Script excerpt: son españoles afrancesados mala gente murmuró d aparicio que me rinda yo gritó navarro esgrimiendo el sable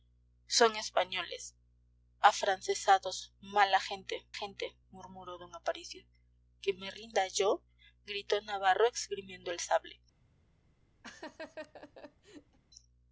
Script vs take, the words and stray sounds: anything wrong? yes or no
yes